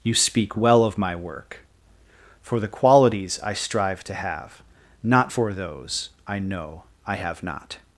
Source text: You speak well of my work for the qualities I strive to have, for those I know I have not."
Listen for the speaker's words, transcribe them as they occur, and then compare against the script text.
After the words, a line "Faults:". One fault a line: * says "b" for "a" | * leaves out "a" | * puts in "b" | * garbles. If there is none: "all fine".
You speak well of my work for the qualities I strive to have, not for those I know I have not."
Faults:
* puts in "not"